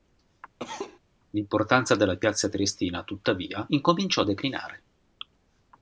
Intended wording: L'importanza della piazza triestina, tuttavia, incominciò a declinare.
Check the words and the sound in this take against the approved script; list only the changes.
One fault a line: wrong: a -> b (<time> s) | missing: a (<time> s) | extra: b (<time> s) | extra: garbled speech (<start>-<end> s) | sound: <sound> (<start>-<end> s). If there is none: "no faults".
sound: cough (0.6-1.0 s)